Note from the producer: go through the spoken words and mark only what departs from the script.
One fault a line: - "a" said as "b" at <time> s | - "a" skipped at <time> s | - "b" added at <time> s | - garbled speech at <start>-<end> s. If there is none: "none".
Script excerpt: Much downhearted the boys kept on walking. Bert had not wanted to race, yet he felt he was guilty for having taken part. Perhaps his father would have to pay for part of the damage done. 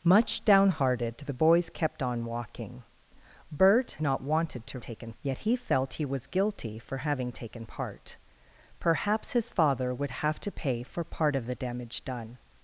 - "had" skipped at 4.0 s
- "race" said as "taken" at 4.8 s